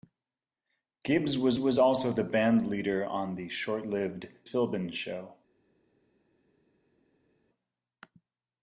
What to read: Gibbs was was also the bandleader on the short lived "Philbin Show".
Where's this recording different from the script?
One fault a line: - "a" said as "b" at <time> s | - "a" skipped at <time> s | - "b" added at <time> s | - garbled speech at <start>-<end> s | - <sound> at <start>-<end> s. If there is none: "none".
none